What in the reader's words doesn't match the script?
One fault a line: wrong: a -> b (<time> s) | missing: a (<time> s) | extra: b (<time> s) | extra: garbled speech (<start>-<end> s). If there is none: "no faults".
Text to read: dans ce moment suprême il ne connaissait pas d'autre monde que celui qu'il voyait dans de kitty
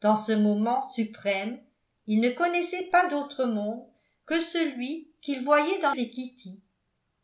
no faults